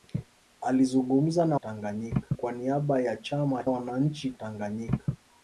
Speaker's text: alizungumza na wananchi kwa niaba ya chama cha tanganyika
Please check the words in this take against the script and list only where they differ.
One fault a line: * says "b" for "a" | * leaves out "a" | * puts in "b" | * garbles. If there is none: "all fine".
* says "tanganyika" for "wananchi"
* says "wananchi" for "cha"